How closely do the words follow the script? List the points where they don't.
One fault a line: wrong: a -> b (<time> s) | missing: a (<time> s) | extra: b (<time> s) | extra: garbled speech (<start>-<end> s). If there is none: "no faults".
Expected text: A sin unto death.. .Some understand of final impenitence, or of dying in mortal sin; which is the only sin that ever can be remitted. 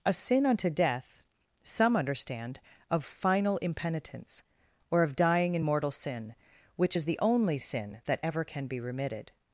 no faults